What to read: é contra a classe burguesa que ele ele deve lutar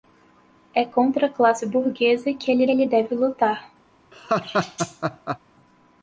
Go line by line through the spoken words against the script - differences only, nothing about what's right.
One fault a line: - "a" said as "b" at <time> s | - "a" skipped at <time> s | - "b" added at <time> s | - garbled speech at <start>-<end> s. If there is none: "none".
none